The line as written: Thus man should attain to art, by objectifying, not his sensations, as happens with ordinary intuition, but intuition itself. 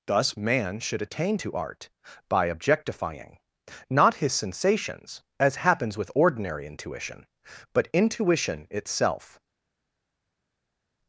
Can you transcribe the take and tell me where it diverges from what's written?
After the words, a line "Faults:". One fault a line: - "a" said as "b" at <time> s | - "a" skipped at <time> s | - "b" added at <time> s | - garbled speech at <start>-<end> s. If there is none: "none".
Thus man should attain to art, by objectifying, not his sensations, as happens with ordinary intuition, but intuition itself.
Faults:
none